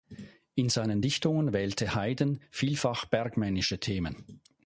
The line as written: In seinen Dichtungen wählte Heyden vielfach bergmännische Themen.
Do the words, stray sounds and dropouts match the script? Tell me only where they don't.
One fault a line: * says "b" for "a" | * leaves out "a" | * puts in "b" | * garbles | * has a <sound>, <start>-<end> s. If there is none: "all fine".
all fine